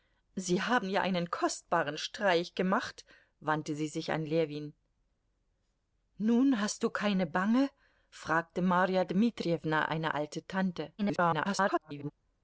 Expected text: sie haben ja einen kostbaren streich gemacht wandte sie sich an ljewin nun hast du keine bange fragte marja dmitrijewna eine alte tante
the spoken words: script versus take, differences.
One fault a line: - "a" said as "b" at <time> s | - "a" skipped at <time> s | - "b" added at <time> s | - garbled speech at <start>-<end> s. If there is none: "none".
- garbled speech at 11.0-12.1 s